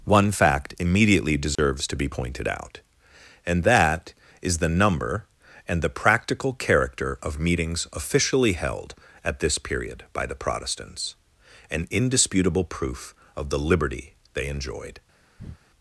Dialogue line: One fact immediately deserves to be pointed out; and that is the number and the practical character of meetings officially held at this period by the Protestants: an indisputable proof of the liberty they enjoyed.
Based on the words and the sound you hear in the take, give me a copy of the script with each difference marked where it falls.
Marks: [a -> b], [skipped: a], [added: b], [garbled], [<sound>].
One fact immediately deserves [dropout] to be pointed out; and that is the number and the practical character of meetings officially held at this period by the Protestants: an indisputable proof of the liberty they enjoyed. [breath]